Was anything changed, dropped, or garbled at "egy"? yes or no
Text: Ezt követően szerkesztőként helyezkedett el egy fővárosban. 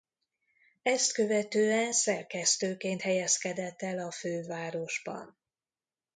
yes